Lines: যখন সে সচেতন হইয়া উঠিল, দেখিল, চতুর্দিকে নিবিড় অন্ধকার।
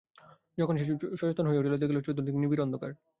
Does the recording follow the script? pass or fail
pass